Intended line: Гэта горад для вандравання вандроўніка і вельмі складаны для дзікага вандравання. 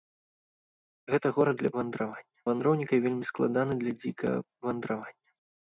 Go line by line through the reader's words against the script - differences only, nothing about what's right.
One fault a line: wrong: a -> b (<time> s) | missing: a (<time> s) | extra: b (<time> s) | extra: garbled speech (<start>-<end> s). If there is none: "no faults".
no faults